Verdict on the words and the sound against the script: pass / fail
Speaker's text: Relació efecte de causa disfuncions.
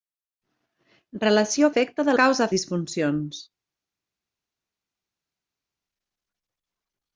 pass